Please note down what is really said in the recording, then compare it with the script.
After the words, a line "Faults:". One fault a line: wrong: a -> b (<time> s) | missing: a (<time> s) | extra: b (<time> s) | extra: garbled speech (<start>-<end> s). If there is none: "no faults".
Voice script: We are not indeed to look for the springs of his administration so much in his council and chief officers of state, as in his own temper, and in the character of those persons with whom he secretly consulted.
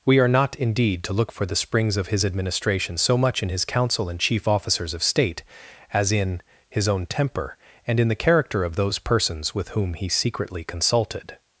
We are not indeed to look for the springs of his administration so much in his council and chief officers of state, as in his own temper, and in the character of those persons with whom he secretly consulted.
Faults:
no faults